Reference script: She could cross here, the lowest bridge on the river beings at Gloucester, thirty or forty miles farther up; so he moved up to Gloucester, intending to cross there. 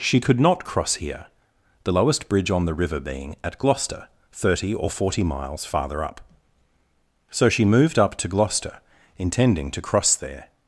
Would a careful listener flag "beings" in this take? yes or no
yes